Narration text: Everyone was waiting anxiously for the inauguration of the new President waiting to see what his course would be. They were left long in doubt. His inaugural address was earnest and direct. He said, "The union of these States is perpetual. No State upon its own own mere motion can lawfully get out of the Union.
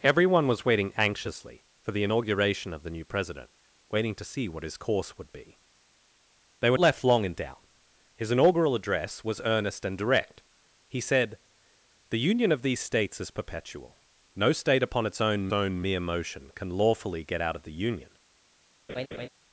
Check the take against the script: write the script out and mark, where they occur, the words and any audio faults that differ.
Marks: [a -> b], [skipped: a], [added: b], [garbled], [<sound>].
Everyone was waiting anxiously for the inauguration of the new President waiting to see what his course would be. They were left long in doubt. His inaugural address was earnest and direct. He said, "The union of these States is perpetual. No State upon its own own mere motion can lawfully get out of the Union. [laugh]